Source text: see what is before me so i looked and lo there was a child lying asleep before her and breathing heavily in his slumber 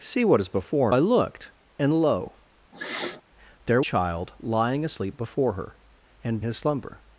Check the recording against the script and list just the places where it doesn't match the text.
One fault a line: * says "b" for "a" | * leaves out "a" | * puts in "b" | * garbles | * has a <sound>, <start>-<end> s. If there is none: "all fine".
* leaves out "me so"
* has a sniff, 2.7-3.2 s
* leaves out "was a"
* leaves out "breathing heavily in"